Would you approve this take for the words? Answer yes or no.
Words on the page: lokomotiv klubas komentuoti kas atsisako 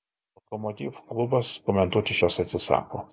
yes